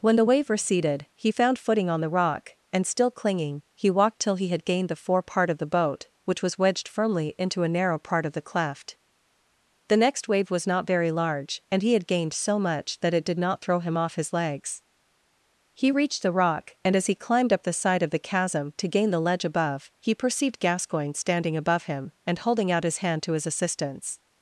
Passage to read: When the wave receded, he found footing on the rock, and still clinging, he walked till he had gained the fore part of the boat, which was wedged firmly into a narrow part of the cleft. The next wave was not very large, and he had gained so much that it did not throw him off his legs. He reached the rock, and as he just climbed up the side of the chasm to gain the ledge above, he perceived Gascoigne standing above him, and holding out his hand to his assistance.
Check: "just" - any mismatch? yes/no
yes